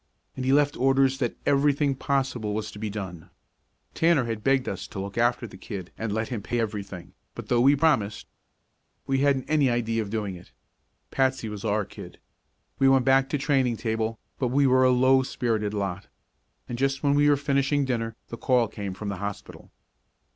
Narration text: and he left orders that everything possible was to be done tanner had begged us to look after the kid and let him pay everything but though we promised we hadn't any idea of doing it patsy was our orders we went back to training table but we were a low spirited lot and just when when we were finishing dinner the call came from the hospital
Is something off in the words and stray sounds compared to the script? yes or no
yes